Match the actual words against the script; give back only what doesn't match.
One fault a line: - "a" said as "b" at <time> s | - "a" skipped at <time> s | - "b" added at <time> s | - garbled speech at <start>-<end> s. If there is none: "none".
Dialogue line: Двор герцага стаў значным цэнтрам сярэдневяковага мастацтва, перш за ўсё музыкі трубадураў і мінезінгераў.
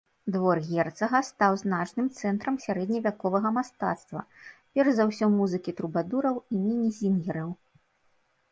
none